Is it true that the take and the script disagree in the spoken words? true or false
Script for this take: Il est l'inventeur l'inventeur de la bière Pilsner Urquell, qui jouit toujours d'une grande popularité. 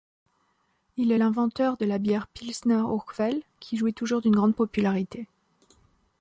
true